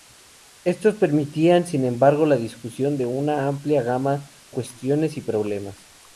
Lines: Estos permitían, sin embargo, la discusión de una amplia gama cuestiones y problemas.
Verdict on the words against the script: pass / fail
pass